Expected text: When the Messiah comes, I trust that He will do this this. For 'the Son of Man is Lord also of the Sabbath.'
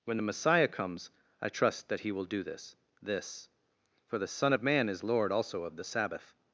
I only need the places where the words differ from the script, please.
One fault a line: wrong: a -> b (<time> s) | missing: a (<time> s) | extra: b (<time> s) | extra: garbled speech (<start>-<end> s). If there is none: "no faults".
no faults